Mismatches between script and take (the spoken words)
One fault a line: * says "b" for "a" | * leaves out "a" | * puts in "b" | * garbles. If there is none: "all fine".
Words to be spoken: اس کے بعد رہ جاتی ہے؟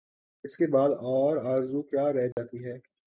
* puts in "اور آرزو کیا"